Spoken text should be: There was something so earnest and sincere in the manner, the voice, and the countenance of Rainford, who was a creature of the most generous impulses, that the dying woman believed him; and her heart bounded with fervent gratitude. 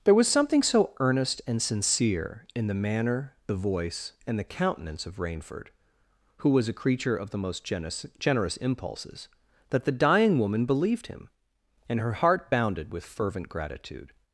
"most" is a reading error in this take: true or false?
false